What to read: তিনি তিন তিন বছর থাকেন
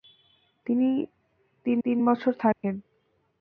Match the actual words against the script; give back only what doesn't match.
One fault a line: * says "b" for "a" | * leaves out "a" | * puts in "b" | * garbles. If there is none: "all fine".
all fine